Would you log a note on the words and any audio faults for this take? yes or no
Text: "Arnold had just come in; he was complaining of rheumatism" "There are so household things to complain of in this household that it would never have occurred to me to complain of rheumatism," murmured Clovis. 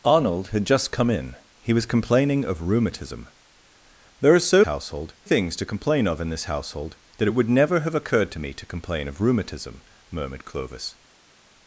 no